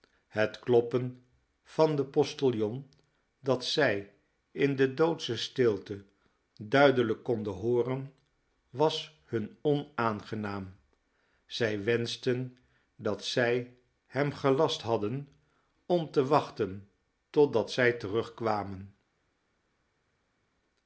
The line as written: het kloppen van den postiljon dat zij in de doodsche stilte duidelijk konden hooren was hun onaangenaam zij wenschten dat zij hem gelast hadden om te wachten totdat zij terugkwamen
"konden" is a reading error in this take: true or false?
false